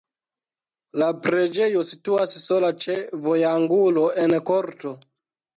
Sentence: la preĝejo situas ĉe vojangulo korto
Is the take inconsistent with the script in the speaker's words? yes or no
yes